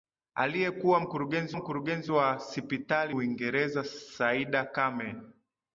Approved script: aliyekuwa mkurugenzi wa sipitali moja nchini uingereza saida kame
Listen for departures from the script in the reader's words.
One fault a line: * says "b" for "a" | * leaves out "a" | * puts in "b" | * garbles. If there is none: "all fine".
* puts in "mkurugenzi"
* leaves out "moja nchini"